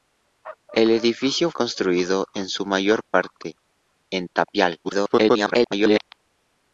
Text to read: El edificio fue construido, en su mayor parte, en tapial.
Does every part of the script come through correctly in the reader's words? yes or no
no